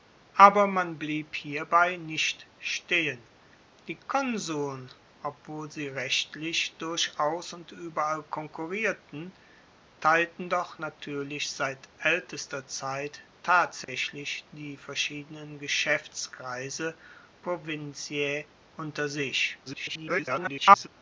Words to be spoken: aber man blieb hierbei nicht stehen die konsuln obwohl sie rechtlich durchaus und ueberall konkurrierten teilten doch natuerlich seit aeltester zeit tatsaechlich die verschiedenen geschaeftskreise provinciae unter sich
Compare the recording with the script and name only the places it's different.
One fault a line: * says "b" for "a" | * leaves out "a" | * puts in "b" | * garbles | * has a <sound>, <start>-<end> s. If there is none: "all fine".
* has a dropout, 13.8-13.9 s
* garbles